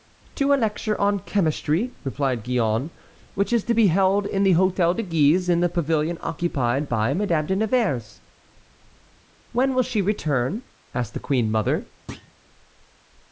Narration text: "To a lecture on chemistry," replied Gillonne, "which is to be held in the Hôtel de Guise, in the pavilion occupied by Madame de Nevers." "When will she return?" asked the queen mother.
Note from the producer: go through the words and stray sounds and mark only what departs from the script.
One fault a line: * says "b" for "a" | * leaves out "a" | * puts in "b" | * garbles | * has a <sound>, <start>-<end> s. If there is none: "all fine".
* has a thud, 12.1-12.3 s